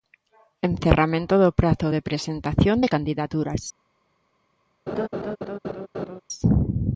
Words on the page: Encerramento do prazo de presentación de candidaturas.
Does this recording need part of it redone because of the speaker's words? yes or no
no